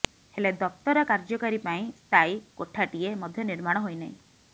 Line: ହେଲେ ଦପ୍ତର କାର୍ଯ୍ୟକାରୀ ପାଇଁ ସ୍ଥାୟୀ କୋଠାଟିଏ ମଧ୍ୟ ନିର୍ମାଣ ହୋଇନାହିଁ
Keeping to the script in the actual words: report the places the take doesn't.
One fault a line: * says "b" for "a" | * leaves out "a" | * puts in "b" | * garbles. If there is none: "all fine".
all fine